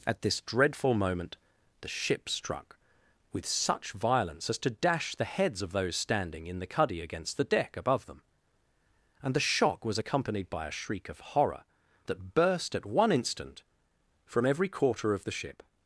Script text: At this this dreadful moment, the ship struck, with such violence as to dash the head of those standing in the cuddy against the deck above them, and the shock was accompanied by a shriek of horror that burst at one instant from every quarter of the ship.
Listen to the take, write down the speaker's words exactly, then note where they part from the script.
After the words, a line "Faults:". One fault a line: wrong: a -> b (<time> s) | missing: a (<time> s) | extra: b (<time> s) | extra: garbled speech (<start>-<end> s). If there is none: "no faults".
At this dreadful moment, the ship struck, with such violence as to dash the heads of those standing in the cuddy against the deck above them, and the shock was accompanied by a shriek of horror that burst at one instant from every quarter of the ship.
Faults:
missing: this (0.4 s)
wrong: head -> heads (5.2 s)